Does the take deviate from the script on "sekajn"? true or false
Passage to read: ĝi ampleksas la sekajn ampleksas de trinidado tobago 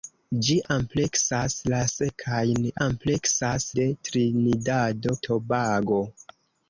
false